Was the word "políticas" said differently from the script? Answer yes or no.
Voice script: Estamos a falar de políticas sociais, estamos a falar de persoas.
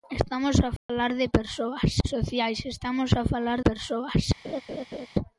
yes